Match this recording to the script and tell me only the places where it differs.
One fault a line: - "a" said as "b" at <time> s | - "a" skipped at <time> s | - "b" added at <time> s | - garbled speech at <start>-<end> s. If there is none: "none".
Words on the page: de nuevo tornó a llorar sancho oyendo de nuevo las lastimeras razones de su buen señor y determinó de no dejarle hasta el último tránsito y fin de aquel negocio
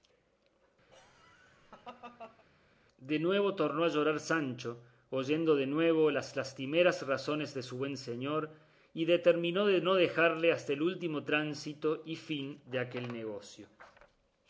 none